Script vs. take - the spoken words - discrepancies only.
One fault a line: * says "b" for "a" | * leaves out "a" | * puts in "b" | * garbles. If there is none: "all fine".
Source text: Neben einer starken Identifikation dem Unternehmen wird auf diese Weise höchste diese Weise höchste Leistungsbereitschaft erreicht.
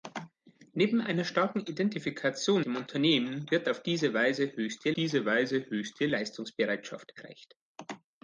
all fine